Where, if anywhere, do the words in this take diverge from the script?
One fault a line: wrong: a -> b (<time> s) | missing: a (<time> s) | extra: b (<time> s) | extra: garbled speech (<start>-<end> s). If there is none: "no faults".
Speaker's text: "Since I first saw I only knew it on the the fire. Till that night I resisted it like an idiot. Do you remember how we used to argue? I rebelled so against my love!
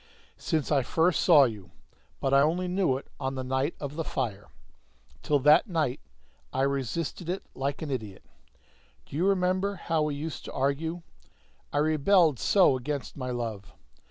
extra: you but (1.4 s)
extra: night of (3.4 s)